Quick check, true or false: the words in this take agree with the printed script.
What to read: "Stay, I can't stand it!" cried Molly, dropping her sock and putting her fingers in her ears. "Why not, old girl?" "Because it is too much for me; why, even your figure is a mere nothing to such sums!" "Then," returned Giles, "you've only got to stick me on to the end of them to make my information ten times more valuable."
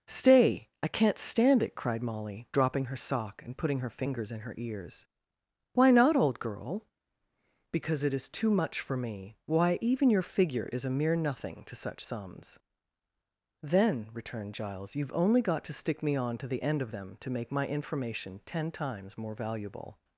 true